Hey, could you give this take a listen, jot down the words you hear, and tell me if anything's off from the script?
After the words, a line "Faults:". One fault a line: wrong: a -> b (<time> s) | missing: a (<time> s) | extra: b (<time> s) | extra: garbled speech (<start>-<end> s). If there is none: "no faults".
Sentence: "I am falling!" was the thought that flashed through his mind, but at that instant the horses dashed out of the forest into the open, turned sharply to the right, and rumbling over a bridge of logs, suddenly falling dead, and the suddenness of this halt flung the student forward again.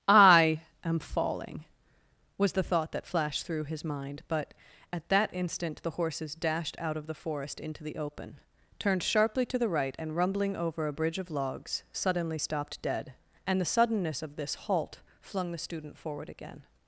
"I am falling!" was the thought that flashed through his mind, but at that instant the horses dashed out of the forest into the open, turned sharply to the right, and rumbling over a bridge of logs, suddenly stopped dead, and the suddenness of this halt flung the student forward again.
Faults:
wrong: falling -> stopped (12.4 s)